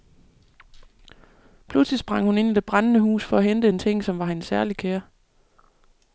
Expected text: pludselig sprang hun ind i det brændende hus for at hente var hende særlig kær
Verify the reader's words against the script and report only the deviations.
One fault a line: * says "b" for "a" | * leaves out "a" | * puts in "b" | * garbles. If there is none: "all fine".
* puts in "en ting som"